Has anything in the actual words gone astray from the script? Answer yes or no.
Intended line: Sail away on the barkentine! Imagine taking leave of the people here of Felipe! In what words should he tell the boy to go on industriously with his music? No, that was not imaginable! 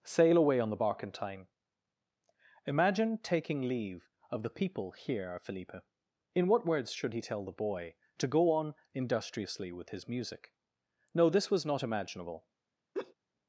yes